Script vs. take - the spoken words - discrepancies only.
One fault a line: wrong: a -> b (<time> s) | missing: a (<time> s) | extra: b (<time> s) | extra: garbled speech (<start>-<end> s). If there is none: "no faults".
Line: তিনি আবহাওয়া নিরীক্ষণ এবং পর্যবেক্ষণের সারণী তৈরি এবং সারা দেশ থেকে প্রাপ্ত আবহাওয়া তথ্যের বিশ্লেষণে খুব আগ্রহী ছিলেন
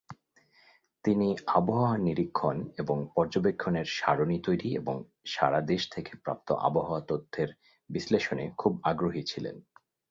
no faults